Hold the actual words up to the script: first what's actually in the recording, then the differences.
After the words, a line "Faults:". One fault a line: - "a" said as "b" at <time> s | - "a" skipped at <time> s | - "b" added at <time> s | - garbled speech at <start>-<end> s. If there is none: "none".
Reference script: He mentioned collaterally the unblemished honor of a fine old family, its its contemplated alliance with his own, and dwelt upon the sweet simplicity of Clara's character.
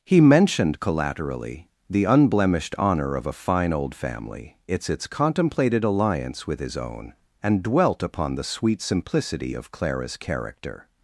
He mentioned collaterally the unblemished honor of a fine old family, its its contemplated alliance with his own, and dwelt upon the sweet simplicity of Clara's character.
Faults:
none